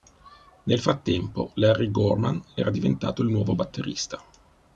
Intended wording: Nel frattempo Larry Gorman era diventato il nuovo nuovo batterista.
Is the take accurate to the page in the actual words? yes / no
no